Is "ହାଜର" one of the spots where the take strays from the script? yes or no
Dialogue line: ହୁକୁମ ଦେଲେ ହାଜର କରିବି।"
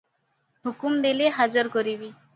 no